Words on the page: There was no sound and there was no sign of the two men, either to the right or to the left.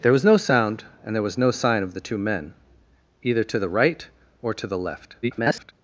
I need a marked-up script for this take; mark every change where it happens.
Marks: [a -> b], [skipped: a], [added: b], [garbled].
There was no sound and there was no sign of the two men, either to the right or to the left. [garbled]